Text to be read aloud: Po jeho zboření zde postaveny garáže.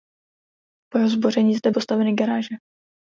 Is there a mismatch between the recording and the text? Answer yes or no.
no